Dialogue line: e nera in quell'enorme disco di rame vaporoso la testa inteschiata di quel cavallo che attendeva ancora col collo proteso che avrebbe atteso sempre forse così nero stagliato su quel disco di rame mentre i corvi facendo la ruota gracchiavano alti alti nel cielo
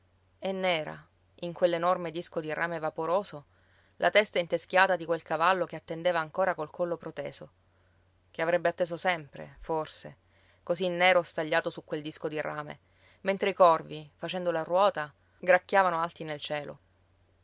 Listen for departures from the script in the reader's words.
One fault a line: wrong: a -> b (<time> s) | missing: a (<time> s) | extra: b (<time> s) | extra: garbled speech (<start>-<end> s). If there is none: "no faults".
missing: alti (16.2 s)